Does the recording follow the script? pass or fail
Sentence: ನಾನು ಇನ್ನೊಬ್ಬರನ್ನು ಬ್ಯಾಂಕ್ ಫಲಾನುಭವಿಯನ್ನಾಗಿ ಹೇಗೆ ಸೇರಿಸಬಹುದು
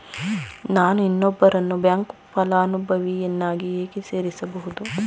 pass